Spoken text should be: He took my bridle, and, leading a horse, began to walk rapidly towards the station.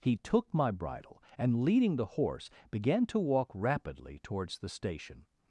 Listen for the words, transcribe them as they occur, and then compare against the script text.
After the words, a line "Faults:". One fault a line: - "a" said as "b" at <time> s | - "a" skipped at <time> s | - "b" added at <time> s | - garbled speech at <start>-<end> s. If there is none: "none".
He took my bridle, and, leading the horse, began to walk rapidly towards the station.
Faults:
- "a" said as "the" at 1.9 s